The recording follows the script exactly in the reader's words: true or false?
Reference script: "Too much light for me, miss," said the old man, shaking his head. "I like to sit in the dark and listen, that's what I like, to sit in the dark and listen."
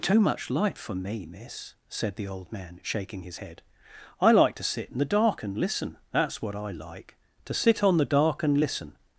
false